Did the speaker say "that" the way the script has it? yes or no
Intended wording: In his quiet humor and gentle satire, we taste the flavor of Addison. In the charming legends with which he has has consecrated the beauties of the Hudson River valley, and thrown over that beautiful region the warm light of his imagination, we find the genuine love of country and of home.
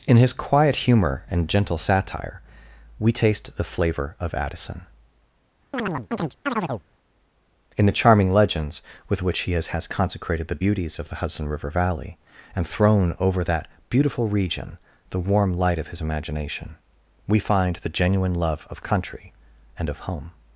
yes